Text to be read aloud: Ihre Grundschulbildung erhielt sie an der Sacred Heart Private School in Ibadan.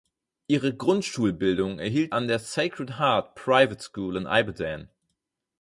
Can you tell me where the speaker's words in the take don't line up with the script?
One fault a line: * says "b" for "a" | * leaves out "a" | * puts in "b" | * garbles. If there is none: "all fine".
* leaves out "sie"